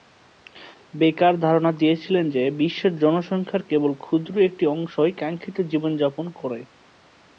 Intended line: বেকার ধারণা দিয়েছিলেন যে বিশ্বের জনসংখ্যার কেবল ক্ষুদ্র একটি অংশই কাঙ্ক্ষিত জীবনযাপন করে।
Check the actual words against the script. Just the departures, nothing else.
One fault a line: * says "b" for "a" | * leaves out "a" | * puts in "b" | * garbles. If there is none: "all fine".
all fine